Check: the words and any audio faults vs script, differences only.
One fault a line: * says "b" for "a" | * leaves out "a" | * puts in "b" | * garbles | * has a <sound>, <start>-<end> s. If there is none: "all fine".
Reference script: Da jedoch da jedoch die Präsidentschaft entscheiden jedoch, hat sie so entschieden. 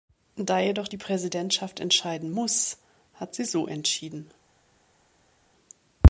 * leaves out "da jedoch"
* says "muss" for "jedoch"